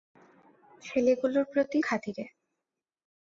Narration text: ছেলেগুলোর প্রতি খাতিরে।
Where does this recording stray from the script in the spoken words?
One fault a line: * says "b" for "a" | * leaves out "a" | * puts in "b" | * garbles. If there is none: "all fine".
all fine